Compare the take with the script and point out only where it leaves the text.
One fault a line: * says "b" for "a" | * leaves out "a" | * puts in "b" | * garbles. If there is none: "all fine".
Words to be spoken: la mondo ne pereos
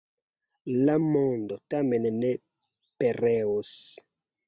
* puts in "tamen"